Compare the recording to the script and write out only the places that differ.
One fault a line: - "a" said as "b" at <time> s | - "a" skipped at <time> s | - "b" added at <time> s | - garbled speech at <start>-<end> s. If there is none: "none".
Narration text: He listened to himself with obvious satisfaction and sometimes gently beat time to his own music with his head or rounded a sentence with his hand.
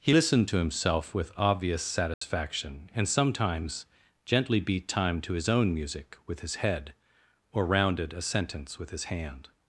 none